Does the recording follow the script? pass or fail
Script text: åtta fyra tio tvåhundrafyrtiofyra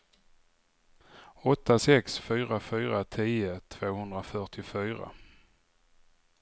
fail